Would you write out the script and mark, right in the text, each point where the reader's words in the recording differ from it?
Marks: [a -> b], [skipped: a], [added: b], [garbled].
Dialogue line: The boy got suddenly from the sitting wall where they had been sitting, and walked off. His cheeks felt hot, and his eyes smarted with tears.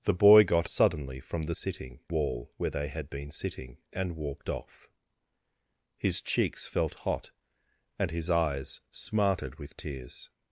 The boy got suddenly from the sitting wall where they had been sitting, and walked off. His cheeks felt hot, and his eyes smarted with tears.